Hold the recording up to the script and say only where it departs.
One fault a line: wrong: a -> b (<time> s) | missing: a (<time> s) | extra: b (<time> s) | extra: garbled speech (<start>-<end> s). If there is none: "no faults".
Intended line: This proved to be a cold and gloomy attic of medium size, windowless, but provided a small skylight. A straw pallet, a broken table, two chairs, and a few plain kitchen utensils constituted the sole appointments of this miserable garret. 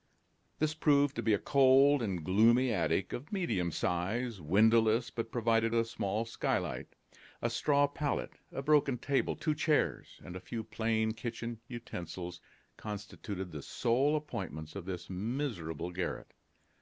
no faults